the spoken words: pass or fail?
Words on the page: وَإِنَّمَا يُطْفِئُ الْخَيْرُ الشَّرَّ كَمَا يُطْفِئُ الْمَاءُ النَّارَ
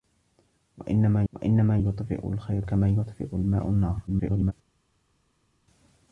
fail